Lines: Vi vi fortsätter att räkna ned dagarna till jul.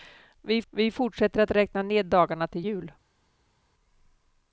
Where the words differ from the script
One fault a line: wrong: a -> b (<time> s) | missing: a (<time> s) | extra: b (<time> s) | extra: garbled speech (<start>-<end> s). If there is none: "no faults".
no faults